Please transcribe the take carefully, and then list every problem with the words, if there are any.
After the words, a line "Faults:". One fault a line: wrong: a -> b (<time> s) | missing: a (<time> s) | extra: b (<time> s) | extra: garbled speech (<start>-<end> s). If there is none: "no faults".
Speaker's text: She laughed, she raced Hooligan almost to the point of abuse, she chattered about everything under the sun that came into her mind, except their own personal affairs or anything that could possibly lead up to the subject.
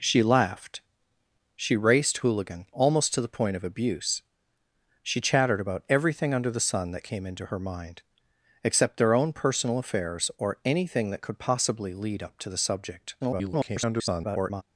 She laughed, she raced Hooligan almost to the point of abuse, she chattered about everything under the sun that came into her mind, except their own personal affairs or anything that could possibly lead up to the subject. [garbled]
Faults:
extra: garbled speech (13.2-14.6 s)